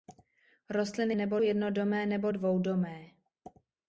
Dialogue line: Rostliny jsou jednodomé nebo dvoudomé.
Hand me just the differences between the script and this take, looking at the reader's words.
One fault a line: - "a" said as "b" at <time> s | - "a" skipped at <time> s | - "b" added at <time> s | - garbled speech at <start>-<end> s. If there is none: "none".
- "jsou" said as "nebo" at 1.1 s